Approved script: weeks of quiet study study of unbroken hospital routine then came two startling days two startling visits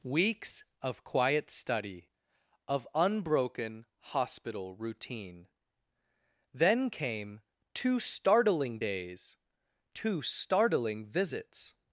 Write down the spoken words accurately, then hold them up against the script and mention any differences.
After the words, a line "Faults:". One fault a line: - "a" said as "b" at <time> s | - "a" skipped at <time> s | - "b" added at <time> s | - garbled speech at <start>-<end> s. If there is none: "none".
weeks of quiet study of unbroken hospital routine then came two startling days two startling visits
Faults:
- "study" skipped at 2.1 s